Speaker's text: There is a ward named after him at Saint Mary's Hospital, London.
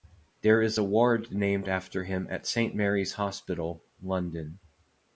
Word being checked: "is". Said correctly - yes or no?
yes